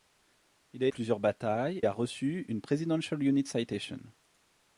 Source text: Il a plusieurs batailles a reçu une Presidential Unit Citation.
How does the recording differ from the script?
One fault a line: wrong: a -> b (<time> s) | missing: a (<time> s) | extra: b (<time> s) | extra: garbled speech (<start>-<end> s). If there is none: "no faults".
no faults